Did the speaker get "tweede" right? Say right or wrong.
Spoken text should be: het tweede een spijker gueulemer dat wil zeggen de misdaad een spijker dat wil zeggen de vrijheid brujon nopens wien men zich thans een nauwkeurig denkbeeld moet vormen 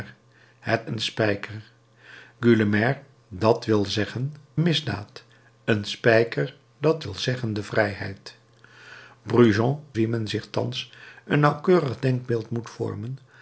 wrong